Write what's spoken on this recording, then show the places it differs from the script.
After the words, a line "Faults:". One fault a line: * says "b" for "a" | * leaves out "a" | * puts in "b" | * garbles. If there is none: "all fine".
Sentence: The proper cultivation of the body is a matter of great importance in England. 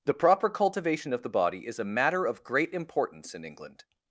The proper cultivation of the body is a matter of great importance in England.
Faults:
all fine